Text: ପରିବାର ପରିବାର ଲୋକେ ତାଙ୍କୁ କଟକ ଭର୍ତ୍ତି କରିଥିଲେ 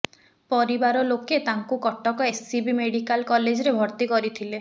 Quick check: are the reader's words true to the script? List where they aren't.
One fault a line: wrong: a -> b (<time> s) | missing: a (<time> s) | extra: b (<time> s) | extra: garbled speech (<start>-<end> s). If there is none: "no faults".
missing: ପରିବାର (1.0 s)
extra: ଏସ୍ସିବି ମେଡିକାଲ କଲେଜରେ (2.2 s)